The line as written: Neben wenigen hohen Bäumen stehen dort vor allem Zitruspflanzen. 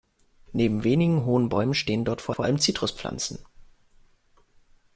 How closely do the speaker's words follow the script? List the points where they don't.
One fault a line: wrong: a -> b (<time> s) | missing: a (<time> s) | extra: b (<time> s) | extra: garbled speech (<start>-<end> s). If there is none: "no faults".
extra: vor (2.3 s)